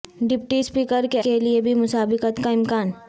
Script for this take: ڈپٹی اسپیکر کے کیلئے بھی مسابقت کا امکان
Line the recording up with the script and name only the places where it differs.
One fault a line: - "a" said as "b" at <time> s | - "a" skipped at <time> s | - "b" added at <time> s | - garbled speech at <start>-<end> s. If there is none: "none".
none